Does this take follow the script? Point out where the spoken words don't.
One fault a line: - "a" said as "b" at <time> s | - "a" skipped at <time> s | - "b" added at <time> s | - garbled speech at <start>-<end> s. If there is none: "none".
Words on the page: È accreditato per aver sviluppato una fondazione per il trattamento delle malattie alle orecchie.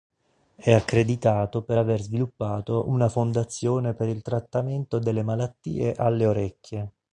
none